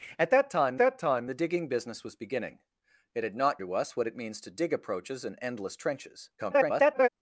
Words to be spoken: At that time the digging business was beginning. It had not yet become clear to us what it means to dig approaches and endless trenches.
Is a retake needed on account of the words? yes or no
yes